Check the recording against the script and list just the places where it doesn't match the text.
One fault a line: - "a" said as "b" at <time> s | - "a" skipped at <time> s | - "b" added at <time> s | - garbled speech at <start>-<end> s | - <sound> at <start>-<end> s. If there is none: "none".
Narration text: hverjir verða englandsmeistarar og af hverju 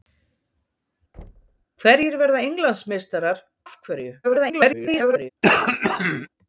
- thud at 1.1-1.7 s
- "og" skipped at 3.4 s
- garbled speech at 4.2-5.3 s
- throat clearing at 5.4-6.3 s